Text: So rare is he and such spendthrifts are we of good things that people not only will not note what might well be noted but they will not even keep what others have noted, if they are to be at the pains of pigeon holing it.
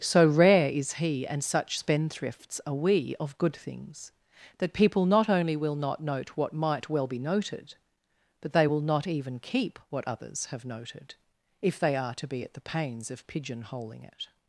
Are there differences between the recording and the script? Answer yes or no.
no